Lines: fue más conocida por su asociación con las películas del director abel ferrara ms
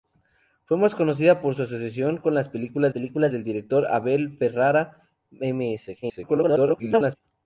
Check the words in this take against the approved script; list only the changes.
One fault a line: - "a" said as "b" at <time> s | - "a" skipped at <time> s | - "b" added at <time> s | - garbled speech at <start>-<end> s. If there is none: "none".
- "películas" added at 2.9 s
- garbled speech at 6.0-7.2 s